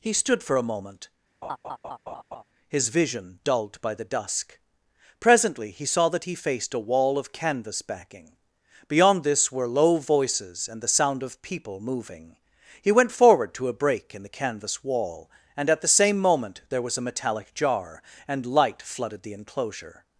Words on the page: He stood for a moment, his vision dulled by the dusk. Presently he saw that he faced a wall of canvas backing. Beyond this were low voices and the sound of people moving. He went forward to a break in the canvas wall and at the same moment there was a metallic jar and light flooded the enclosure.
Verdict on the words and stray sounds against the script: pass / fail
fail